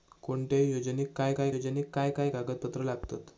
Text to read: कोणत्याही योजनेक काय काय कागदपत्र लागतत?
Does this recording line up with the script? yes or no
no